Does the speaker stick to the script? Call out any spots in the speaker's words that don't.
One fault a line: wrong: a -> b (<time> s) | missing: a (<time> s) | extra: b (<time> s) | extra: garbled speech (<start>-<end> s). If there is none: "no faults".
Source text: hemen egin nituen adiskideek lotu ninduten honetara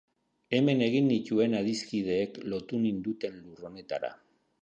extra: lur (3.4 s)